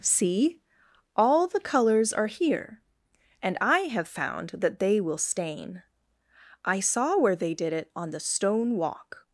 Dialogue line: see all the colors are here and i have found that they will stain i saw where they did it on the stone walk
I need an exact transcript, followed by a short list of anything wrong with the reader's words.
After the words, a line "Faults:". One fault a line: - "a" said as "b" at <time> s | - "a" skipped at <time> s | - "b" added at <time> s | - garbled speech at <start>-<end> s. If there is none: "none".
see all the colors are here and i have found that they will stain i saw where they did it on the stone walk
Faults:
none